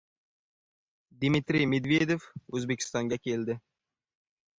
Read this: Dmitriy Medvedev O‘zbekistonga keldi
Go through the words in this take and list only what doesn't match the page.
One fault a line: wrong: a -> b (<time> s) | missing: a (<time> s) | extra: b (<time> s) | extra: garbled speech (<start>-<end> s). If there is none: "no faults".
no faults